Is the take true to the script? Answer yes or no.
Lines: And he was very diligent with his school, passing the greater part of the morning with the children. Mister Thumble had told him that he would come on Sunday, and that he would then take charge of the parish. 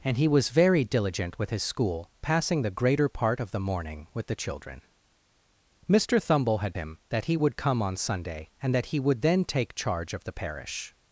no